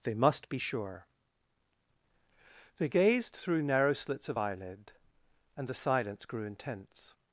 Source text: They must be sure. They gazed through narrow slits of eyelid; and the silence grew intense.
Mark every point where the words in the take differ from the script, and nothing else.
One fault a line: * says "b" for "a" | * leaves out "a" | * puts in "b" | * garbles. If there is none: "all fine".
all fine